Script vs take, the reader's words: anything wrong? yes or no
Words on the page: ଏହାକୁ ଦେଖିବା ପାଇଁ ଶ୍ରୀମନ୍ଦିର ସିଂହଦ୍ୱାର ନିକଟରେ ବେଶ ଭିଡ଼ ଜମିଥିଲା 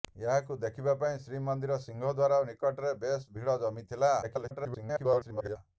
yes